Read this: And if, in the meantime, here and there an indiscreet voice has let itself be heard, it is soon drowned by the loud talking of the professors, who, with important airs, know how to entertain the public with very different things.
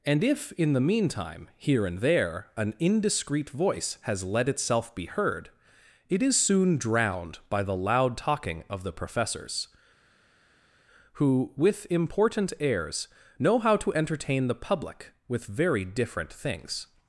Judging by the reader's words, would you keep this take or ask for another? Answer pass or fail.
pass